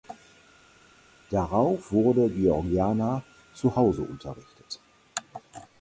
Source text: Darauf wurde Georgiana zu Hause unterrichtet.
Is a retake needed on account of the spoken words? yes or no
no